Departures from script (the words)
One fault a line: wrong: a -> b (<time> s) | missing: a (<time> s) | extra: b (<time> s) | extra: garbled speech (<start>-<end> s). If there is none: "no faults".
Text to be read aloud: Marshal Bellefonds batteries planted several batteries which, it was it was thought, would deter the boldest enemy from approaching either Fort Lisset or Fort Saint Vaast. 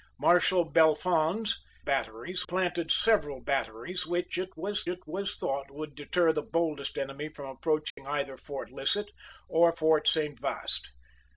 no faults